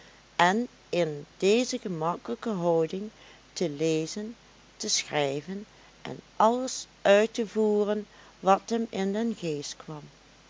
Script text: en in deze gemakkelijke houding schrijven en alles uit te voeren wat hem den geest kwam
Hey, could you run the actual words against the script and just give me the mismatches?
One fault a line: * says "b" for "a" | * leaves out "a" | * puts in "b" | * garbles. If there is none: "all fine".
* puts in "te lezen te"
* puts in "in"